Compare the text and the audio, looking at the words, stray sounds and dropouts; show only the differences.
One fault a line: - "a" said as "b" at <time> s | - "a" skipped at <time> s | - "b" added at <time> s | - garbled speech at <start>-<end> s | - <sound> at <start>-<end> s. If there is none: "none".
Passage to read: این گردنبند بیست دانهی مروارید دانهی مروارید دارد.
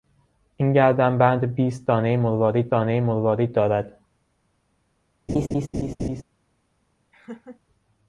- laugh at 5.3-6.2 s
- laugh at 7.1-7.6 s